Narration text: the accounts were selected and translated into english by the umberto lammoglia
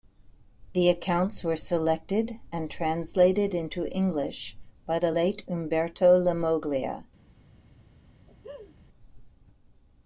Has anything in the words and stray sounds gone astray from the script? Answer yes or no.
yes